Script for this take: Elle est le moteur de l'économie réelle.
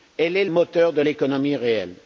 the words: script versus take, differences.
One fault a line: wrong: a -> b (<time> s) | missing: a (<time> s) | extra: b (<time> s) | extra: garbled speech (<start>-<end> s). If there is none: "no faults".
missing: le (0.5 s)